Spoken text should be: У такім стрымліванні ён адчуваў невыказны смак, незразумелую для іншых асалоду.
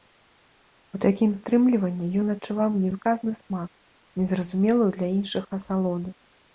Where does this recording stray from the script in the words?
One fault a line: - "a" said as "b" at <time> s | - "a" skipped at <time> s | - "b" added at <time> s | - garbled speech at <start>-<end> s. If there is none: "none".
none